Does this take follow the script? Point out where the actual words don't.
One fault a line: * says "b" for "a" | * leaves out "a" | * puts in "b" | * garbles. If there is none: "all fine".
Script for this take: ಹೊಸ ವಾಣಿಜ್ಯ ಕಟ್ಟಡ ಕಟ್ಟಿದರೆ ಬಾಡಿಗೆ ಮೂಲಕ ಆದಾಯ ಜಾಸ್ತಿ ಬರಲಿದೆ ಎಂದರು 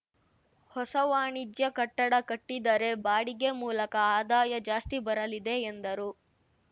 all fine